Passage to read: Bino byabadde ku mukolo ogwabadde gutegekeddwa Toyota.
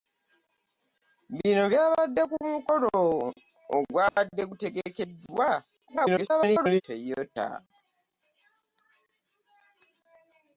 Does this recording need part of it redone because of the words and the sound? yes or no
yes